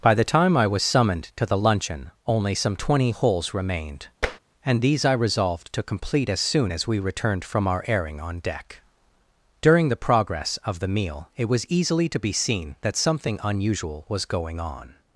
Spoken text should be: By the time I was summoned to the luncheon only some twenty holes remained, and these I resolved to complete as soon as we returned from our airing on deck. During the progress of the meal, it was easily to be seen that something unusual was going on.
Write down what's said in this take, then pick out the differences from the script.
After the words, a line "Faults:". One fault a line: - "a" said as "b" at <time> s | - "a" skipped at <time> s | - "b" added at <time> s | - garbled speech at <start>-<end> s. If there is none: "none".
By the time I was summoned to the luncheon only some twenty holes remained, and these I resolved to complete as soon as we returned from our airing on deck. During the progress of the meal, it was easily to be seen that something unusual was going on.
Faults:
none